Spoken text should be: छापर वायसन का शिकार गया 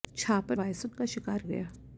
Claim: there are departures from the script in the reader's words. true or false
false